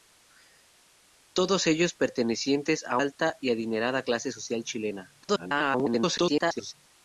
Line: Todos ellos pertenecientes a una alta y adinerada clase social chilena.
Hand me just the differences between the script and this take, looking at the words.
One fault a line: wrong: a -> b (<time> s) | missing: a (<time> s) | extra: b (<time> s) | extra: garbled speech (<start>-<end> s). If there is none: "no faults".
missing: una (3.0 s)
extra: garbled speech (5.2-6.7 s)